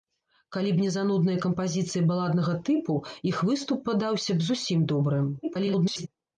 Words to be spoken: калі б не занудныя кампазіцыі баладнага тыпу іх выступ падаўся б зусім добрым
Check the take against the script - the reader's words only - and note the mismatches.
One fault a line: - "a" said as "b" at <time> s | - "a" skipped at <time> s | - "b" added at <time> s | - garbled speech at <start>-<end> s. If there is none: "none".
- garbled speech at 5.4-6.1 s